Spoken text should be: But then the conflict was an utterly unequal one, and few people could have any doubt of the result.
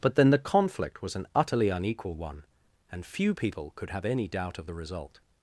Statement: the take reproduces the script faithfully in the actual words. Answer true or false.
true